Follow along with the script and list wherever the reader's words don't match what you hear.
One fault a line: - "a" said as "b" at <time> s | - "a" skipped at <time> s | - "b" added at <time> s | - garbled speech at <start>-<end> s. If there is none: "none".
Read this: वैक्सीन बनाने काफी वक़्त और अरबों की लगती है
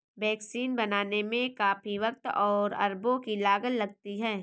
- "में" added at 1.2 s
- "लागत" added at 3.4 s